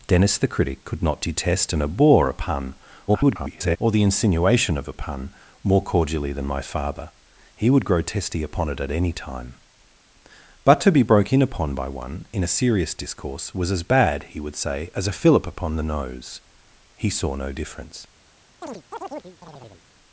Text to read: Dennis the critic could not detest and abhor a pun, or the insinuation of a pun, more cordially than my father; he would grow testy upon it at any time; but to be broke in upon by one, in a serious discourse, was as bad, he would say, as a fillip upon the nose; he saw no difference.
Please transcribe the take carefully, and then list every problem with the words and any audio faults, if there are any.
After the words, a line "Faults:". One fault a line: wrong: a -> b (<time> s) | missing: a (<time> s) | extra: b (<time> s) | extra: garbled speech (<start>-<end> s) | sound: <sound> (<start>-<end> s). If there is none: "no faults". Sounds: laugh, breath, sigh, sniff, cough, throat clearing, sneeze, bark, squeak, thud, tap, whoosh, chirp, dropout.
Dennis the critic could not detest and abhor a pun, [garbled] or the insinuation of a pun, more cordially than my father; he would grow testy upon it at any time; but to be broke in upon by one, in a serious discourse, was as bad, he would say, as a fillip upon the nose; he saw no difference.
Faults:
extra: garbled speech (3.1-3.8 s)
sound: chirp (18.6-19.8 s)